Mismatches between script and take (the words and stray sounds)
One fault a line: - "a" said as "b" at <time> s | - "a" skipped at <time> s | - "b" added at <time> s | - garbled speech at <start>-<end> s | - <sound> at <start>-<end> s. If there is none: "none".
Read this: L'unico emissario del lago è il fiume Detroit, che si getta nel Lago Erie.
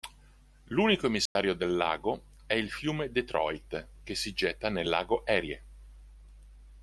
- dropout at 1.3-1.4 s